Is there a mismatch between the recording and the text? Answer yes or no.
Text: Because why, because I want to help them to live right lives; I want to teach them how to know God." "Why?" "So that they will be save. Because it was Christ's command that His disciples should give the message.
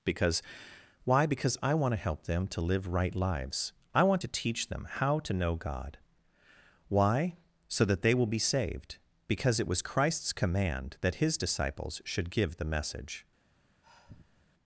yes